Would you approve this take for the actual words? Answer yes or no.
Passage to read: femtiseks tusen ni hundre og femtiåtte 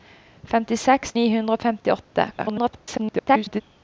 no